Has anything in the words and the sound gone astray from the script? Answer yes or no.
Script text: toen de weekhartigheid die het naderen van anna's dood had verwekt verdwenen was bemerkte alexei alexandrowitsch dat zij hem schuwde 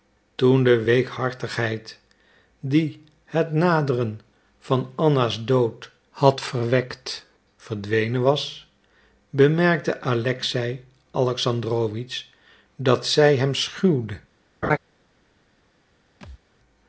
yes